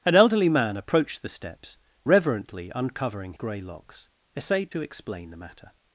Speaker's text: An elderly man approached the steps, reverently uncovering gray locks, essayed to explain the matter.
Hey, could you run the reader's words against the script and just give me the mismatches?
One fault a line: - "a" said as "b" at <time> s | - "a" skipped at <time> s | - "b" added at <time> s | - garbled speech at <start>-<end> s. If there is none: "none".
none